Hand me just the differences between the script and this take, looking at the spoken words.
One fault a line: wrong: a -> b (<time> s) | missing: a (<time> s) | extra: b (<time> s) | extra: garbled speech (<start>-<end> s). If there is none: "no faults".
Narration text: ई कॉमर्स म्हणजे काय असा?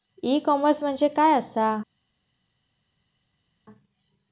no faults